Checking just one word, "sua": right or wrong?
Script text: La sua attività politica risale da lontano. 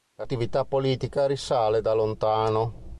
wrong